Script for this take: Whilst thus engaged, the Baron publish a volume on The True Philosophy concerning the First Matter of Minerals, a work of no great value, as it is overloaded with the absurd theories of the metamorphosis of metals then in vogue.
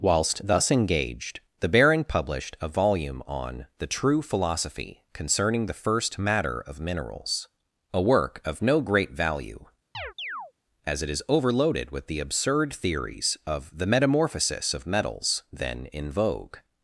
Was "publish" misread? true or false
true